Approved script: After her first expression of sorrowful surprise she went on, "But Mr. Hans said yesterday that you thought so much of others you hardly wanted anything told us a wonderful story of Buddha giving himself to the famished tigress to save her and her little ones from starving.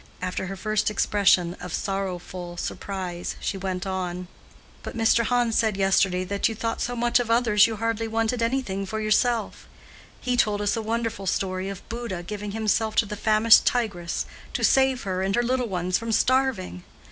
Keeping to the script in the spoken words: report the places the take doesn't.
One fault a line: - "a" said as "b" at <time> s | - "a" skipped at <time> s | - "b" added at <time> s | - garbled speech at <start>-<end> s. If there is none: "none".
- "for yourself He" added at 8.9 s